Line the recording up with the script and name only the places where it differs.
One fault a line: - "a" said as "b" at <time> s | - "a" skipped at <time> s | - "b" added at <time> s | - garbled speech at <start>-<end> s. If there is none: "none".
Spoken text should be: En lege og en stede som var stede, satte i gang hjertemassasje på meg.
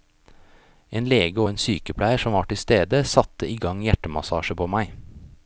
- "stede" said as "sykepleier" at 1.6 s
- "til" added at 2.5 s